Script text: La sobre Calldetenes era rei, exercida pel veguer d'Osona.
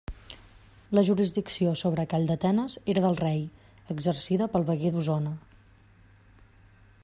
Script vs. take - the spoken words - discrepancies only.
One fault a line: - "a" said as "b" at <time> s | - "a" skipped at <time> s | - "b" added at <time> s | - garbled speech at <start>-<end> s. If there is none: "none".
- "jurisdicció" added at 1.1 s
- "del" added at 3.0 s